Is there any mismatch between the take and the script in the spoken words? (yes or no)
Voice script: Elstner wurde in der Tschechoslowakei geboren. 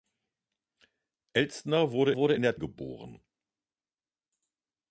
yes